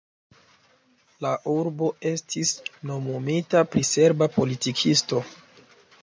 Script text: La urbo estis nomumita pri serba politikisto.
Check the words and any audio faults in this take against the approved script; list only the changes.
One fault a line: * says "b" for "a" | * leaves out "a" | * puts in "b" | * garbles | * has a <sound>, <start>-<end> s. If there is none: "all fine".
all fine